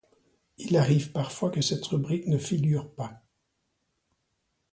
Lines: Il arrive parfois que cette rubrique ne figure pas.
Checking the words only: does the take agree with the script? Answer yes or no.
yes